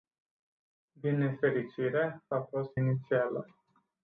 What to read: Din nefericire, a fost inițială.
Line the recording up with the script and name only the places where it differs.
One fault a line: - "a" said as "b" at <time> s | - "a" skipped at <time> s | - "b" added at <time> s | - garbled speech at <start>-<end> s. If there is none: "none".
none